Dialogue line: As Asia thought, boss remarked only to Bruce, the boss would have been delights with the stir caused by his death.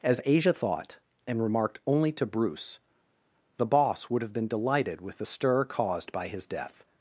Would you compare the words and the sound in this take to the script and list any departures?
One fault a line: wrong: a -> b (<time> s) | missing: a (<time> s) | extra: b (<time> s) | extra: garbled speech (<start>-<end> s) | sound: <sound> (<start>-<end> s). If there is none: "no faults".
wrong: boss -> and (1.3 s)
wrong: delights -> delighted (4.5 s)